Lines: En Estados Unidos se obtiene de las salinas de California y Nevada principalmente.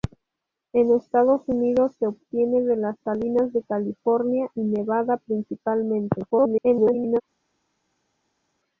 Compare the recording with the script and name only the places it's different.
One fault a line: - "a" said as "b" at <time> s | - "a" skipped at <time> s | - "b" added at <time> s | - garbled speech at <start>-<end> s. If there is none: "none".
- garbled speech at 6.3-7.2 s